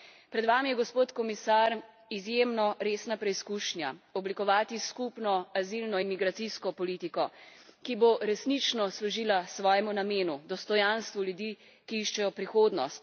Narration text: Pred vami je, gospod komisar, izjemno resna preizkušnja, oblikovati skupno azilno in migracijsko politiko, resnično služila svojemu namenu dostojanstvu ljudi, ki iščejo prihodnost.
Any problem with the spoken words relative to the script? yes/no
yes